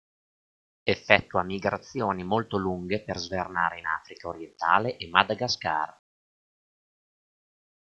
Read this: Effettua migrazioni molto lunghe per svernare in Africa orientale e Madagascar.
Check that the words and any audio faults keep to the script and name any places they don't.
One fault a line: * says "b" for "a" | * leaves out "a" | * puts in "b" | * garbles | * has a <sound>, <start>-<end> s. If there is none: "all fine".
all fine